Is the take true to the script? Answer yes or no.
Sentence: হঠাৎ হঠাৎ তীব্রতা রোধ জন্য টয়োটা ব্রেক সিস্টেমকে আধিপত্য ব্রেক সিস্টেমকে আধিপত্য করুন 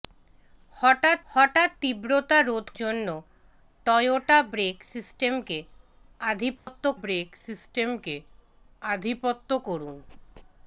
yes